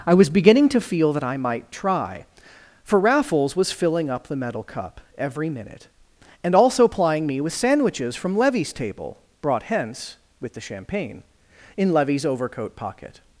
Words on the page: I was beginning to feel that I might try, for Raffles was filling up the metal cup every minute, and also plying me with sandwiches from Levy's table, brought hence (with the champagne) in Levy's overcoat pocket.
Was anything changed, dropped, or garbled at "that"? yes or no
no